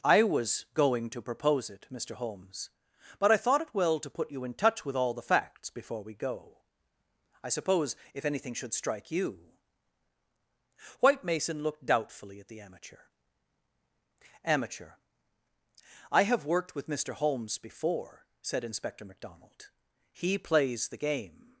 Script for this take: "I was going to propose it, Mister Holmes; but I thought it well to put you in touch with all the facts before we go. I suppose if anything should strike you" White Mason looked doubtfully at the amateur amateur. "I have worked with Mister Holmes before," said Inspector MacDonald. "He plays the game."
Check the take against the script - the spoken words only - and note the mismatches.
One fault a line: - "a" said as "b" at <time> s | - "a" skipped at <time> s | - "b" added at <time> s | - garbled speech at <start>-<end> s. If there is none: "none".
none